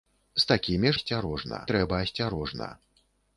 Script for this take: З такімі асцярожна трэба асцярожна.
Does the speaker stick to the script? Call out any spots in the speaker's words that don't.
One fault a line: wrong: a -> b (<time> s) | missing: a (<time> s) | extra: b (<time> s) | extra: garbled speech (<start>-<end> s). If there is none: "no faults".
no faults